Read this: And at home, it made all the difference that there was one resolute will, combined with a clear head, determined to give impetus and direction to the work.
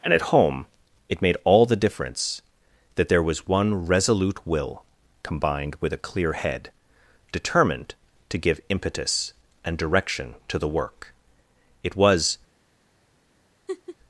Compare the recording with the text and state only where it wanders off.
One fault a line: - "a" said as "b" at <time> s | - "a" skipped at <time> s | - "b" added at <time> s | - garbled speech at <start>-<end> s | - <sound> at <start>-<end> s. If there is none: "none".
- "It was" added at 11.8 s
- laugh at 13.7-14.0 s